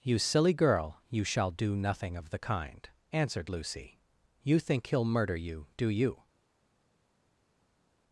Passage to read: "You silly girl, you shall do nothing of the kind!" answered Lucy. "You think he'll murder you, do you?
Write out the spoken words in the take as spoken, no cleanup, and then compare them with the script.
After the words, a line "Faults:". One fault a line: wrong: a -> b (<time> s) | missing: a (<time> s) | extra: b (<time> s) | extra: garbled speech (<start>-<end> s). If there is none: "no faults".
"You silly girl, you shall do nothing of the kind!" answered Lucy. "You think he'll murder you, do you?
Faults:
no faults